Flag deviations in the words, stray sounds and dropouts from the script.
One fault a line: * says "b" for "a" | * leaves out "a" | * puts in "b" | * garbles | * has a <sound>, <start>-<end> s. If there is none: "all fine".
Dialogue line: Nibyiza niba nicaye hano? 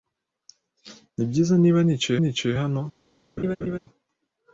* puts in "nicaye"
* has a laugh, 3.4-3.8 s